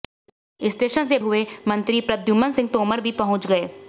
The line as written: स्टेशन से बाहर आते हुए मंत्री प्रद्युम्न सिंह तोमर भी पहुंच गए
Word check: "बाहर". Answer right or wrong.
wrong